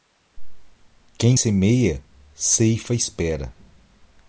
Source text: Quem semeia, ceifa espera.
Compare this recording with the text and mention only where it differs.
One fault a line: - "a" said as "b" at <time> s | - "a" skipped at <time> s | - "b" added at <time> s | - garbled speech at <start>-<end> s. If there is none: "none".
none